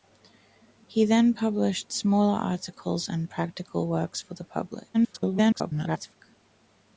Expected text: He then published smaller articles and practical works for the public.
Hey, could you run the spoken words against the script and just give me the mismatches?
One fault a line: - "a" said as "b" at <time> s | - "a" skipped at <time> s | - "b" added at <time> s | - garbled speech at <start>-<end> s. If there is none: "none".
- garbled speech at 4.9-6.2 s